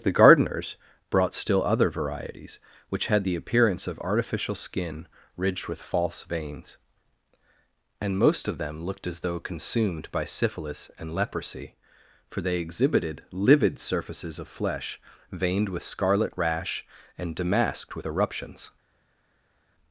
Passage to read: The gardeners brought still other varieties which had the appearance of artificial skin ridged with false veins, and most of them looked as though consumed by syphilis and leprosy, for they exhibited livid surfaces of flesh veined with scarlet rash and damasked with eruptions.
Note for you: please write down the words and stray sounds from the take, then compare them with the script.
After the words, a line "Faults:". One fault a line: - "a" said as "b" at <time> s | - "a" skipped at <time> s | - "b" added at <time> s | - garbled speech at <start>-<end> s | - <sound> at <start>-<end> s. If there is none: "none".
The gardeners brought still other varieties which had the appearance of artificial skin ridged with false veins, and most of them looked as though consumed by syphilis and leprosy, for they exhibited livid surfaces of flesh veined with scarlet rash and damasked with eruptions.
Faults:
none